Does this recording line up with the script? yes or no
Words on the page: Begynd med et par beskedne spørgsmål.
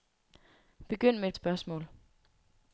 no